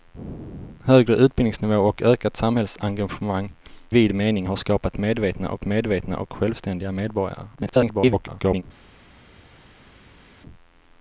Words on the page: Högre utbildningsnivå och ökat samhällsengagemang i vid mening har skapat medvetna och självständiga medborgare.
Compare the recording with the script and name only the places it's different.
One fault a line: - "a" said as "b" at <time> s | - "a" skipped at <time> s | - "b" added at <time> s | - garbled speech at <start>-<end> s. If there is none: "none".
- "i" skipped at 3.5 s
- "medvetna och" added at 5.6 s
- garbled speech at 7.5-8.6 s